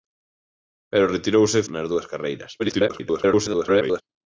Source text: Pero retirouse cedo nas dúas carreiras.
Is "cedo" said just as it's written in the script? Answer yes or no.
no